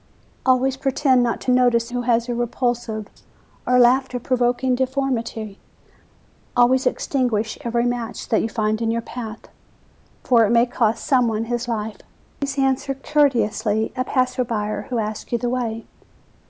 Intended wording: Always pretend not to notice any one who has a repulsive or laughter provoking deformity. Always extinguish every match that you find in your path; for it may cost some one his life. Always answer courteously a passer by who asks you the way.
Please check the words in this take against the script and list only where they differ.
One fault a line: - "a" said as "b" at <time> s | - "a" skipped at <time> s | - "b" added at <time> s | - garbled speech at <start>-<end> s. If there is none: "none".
- "any one" skipped at 1.9 s